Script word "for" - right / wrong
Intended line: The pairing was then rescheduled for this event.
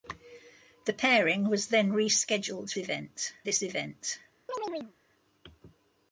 wrong